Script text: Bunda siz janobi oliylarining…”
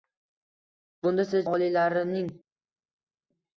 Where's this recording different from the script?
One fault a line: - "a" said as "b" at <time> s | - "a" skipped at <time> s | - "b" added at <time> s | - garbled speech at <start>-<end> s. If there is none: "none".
- "janobi" skipped at 1.4 s